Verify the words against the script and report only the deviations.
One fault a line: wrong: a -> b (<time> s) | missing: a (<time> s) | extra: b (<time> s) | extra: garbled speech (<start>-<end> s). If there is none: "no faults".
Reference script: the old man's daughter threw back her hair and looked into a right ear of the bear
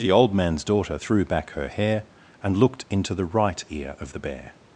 wrong: a -> the (3.1 s)